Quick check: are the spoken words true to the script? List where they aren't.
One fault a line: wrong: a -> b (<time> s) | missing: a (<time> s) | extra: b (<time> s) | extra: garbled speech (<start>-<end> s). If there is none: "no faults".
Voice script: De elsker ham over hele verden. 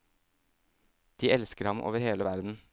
no faults